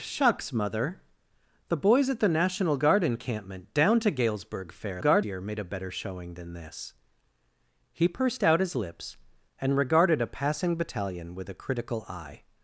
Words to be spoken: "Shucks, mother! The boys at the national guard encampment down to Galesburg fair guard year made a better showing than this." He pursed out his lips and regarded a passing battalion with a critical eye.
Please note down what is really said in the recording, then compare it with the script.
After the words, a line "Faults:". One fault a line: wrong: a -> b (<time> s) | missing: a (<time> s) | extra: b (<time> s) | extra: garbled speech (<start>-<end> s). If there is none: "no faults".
"Shucks, mother! The boys at the national guard encampment down to Galesburg fair guard year made a better showing than this." He pursed out his lips and regarded a passing battalion with a critical eye.
Faults:
no faults